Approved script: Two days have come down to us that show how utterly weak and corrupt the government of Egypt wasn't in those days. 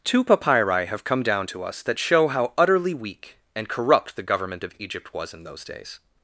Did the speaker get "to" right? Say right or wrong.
right